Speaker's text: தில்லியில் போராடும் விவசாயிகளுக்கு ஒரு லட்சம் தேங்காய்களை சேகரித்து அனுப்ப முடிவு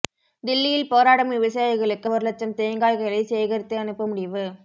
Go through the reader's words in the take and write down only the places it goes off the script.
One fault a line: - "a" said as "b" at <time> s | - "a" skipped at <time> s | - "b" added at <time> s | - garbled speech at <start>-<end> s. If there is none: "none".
none